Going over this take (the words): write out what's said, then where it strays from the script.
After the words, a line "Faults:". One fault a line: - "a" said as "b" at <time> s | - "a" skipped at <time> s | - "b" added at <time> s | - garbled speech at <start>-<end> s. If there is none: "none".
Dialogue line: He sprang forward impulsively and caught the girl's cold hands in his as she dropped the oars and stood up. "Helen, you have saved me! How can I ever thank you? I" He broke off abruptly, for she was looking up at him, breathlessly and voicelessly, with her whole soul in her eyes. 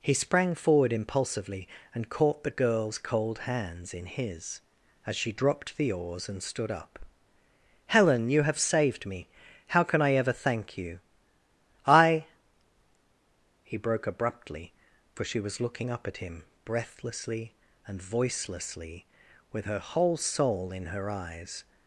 He sprang forward impulsively and caught the girl's cold hands in his as she dropped the oars and stood up. "Helen, you have saved me! How can I ever thank you? I" He broke abruptly, for she was looking up at him, breathlessly and voicelessly, with her whole soul in her eyes.
Faults:
- "off" skipped at 14.1 s